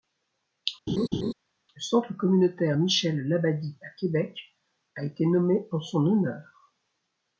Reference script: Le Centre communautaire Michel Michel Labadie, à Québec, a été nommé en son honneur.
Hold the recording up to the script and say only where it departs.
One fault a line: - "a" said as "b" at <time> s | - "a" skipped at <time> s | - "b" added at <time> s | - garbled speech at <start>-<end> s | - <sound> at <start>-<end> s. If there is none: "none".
- laugh at 0.9-1.3 s
- "Michel" skipped at 3.3 s